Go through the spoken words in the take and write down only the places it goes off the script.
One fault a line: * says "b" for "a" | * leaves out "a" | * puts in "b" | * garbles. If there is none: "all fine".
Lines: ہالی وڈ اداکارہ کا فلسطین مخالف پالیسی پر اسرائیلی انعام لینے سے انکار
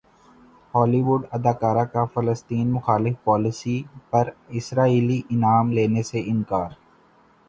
all fine